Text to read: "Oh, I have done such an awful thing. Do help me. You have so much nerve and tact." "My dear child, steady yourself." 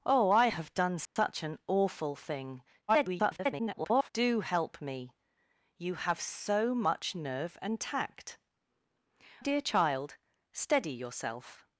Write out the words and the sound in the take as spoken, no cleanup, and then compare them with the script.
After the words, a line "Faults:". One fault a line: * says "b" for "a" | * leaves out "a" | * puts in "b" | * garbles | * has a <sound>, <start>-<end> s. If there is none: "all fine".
"Oh, I have done such an awful thing. [garbled] Do help me. You have so much nerve and tact." "Dear child, steady yourself."
Faults:
* has a dropout, 1.0-1.2 s
* garbles
* leaves out "My"